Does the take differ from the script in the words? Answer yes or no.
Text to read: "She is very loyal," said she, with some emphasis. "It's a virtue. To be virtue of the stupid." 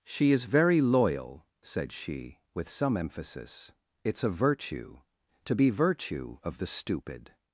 no